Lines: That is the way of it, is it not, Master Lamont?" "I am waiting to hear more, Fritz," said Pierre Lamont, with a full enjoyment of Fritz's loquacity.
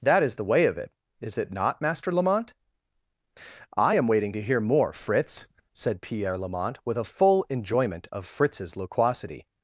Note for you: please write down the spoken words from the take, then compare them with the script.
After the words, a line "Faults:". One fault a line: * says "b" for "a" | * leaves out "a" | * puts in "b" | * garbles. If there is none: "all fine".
That is the way of it, is it not, Master Lamont?" "I am waiting to hear more, Fritz," said Pierre Lamont, with a full enjoyment of Fritz's loquacity.
Faults:
all fine